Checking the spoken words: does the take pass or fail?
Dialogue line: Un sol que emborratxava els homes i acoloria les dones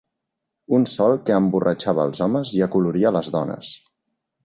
pass